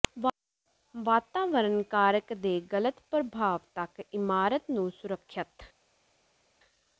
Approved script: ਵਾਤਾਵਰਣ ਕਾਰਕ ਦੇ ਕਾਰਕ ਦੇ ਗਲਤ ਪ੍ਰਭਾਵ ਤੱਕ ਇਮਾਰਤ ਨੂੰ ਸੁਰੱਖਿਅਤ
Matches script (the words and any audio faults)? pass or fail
fail